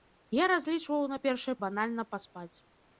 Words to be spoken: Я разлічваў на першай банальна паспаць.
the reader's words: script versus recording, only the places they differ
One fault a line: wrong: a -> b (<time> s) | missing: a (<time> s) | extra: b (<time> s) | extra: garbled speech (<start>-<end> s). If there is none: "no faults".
no faults